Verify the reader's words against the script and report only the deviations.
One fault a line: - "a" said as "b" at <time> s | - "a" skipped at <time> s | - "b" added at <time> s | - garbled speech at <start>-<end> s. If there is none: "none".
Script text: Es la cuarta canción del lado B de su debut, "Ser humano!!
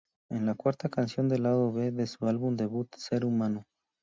- "álbum" added at 2.3 s